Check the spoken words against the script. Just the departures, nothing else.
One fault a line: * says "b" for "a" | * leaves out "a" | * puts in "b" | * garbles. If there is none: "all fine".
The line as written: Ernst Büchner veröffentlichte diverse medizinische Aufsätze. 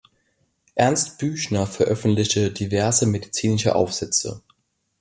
all fine